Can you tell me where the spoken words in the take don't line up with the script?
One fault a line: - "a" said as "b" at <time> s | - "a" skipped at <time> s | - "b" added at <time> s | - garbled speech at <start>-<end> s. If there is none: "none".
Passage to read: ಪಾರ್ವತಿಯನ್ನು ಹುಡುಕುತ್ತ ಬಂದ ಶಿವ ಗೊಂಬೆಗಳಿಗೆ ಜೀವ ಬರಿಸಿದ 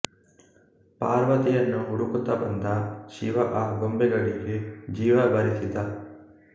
- "ಆ" added at 3.5 s